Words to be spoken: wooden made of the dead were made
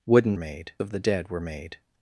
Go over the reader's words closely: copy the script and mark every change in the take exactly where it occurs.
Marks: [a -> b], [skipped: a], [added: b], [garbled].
wooden made of the dead were made